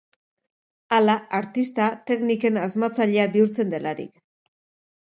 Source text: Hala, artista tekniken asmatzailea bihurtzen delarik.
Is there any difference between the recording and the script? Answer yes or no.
no